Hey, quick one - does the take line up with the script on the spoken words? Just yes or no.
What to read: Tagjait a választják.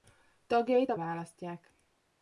yes